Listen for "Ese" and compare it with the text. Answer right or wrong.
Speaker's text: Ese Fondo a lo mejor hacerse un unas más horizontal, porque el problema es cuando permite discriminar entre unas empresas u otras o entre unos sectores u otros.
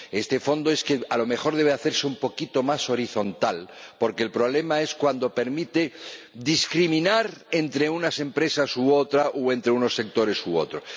wrong